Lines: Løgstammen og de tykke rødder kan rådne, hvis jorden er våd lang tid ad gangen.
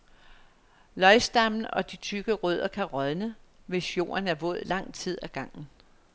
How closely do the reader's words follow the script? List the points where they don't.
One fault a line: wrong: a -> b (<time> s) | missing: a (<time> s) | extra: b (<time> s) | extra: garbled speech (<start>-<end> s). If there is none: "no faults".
no faults